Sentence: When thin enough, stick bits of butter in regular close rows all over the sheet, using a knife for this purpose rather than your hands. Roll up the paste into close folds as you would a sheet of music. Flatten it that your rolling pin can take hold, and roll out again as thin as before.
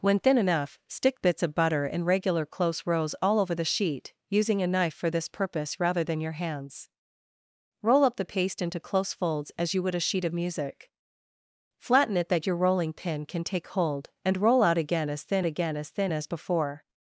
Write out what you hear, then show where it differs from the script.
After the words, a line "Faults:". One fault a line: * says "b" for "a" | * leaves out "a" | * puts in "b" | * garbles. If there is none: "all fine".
When thin enough, stick bits of butter in regular close rows all over the sheet, using a knife for this purpose rather than your hands. Roll up the paste into close folds as you would a sheet of music. Flatten it that your rolling pin can take hold, and roll out again as thin again as thin as before.
Faults:
* puts in "again as thin"